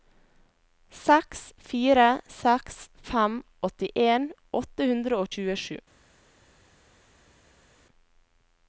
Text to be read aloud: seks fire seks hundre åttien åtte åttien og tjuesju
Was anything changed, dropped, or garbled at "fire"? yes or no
no